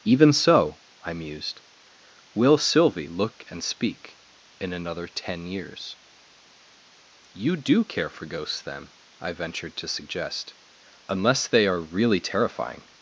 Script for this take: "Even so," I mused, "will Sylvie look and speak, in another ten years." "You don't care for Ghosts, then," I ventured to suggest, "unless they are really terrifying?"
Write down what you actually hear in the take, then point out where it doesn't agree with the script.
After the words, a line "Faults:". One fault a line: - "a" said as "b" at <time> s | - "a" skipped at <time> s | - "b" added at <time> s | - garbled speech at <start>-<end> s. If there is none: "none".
"Even so," I mused, "will Sylvie look and speak, in another ten years." "You do care for Ghosts, then," I ventured to suggest, "unless they are really terrifying?"
Faults:
- "don't" said as "do" at 7.6 s